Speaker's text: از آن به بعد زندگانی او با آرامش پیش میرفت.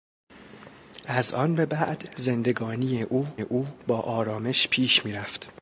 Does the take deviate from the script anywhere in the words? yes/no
yes